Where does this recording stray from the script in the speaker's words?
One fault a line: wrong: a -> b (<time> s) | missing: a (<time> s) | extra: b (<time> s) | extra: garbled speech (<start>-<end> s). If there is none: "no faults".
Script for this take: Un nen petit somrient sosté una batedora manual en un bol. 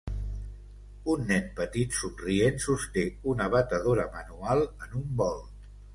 no faults